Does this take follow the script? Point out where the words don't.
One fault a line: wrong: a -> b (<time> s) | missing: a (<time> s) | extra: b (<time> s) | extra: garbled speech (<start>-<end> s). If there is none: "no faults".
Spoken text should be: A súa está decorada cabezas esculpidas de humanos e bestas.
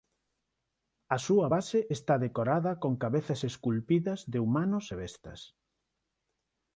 extra: base (1.5 s)
extra: con (2.8 s)